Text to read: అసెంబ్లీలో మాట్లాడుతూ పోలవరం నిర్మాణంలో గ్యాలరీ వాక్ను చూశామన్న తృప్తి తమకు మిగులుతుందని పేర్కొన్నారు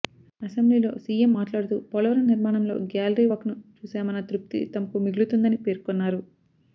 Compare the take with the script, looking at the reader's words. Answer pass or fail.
fail